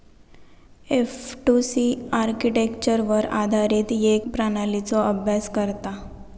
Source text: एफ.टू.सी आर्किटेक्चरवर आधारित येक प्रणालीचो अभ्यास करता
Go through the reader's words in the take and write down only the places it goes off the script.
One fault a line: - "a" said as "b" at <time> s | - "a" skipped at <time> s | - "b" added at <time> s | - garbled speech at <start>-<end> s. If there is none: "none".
none